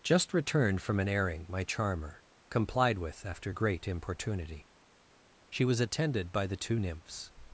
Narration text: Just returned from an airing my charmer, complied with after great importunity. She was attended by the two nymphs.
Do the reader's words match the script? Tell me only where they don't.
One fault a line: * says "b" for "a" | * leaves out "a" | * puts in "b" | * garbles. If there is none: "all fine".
all fine